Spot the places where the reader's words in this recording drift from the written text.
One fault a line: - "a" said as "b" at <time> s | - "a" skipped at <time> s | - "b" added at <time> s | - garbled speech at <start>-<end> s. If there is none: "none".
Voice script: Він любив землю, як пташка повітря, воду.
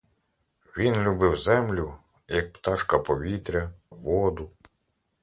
none